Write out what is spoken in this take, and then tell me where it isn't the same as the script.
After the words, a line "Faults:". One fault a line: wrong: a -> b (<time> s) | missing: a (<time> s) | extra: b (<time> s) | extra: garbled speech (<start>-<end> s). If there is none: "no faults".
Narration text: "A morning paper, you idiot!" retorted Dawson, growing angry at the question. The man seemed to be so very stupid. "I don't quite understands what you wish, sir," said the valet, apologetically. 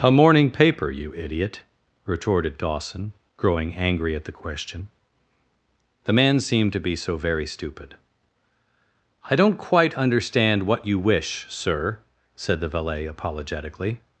"A morning paper, you idiot!" retorted Dawson, growing angry at the question. The man seemed to be so very stupid. "I don't quite understand what you wish, sir," said the valet, apologetically.
Faults:
wrong: understands -> understand (9.9 s)